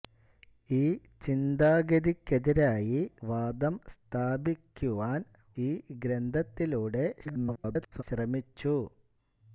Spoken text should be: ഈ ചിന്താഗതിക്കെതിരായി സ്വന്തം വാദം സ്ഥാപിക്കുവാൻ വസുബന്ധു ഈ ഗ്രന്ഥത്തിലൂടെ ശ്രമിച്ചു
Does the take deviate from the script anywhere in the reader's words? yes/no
yes